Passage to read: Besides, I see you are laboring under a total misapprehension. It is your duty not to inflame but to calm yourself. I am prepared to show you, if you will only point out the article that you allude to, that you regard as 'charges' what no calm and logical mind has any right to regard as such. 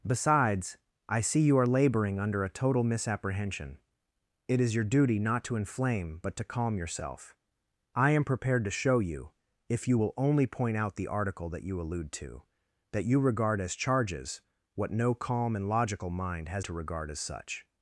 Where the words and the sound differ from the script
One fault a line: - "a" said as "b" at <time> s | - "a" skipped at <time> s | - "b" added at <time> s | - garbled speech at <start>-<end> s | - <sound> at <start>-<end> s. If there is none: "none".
- "any right" skipped at 16.7 s